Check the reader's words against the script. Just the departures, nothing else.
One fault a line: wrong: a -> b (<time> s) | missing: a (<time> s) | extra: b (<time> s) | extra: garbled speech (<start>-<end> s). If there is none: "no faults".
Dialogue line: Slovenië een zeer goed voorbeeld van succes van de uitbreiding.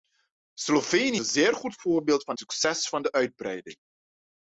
no faults